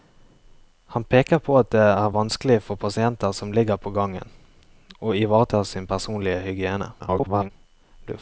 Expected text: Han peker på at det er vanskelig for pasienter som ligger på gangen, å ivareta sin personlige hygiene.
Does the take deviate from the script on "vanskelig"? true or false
false